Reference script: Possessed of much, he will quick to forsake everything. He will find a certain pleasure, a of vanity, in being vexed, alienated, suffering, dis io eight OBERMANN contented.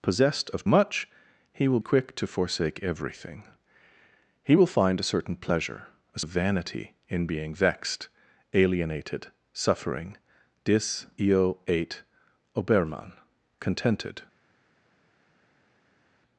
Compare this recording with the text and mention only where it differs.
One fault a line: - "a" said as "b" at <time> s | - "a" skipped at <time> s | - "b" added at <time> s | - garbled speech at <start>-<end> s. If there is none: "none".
none